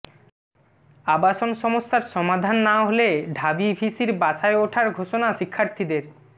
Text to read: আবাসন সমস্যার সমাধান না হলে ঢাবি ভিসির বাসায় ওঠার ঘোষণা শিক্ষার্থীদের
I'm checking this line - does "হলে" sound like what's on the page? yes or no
yes